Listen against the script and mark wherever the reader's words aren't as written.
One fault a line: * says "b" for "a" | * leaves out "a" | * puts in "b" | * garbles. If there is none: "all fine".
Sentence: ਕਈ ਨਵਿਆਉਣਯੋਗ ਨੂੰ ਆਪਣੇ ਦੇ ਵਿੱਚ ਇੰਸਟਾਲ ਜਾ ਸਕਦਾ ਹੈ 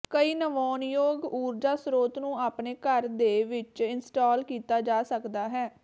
* puts in "ਊਰਜਾ ਸਰੋਤ"
* puts in "ਘਰ"
* puts in "ਕੀਤਾ"